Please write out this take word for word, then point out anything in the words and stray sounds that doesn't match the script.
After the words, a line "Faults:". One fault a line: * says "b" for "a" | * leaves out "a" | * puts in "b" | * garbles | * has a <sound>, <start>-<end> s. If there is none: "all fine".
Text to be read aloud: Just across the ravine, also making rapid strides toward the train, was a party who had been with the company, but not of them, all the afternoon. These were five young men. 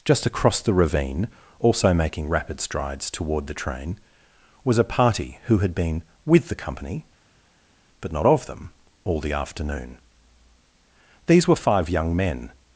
Just across the ravine, also making rapid strides toward the train, was a party who had been with the company, but not of them, all the afternoon. These were five young men.
Faults:
all fine